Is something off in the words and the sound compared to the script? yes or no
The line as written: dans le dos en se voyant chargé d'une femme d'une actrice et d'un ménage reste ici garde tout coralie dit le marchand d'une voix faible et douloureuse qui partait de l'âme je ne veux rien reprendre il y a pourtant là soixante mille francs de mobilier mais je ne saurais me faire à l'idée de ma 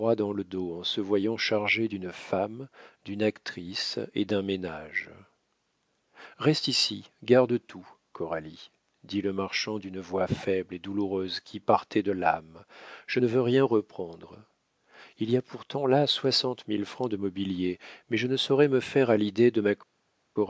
no